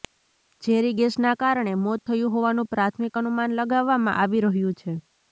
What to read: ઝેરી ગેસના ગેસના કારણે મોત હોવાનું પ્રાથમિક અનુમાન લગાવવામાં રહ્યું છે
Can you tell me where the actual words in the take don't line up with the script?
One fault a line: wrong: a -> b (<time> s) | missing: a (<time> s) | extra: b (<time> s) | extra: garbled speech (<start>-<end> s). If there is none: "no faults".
missing: ગેસના (1.3 s)
extra: થયું (2.0 s)
extra: આવી (4.2 s)